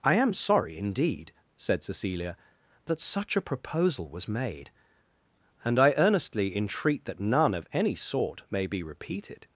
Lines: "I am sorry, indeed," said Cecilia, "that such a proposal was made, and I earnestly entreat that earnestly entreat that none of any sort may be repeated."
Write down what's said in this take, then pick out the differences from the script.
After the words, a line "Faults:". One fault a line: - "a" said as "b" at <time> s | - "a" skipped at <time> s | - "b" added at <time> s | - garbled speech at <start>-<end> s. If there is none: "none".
"I am sorry, indeed," said Cecilia, "that such a proposal was made, and I earnestly entreat that none of any sort may be repeated."
Faults:
- "earnestly entreat that" skipped at 7.2 s